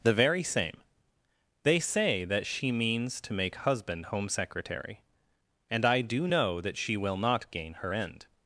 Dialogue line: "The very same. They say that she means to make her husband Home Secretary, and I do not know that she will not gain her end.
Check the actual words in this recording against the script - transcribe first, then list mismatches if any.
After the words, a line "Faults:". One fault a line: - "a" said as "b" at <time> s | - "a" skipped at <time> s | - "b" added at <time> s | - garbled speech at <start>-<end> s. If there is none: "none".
"The very same. They say that she means to make husband Home Secretary, and I do know that she will not gain her end.
Faults:
- "her" skipped at 3.5 s
- "not" skipped at 6.3 s